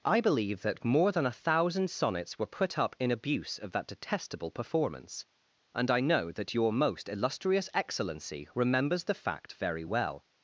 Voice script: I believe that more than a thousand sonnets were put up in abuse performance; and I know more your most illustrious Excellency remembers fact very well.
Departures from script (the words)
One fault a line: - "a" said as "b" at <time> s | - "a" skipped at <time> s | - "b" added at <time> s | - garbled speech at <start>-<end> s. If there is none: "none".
- "of that detestable" added at 3.6 s
- "more" said as "that" at 6.3 s
- "the" added at 9.0 s